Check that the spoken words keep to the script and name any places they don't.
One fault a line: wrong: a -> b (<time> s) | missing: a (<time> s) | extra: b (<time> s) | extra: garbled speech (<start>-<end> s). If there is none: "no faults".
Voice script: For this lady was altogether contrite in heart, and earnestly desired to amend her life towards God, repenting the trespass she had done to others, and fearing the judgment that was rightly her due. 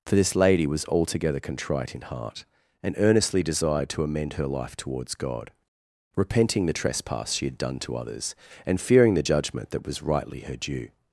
no faults